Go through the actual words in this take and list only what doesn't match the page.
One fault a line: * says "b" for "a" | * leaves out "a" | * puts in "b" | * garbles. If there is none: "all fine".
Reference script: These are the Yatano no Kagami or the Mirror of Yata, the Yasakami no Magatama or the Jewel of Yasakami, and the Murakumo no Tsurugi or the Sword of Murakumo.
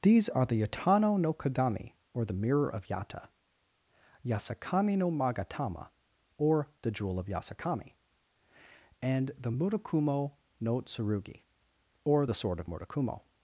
* leaves out "the"